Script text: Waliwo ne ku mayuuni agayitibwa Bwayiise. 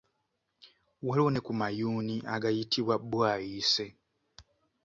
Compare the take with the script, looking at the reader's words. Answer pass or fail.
pass